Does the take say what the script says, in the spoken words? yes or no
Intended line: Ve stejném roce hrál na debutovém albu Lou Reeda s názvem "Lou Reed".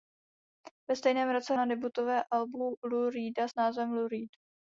no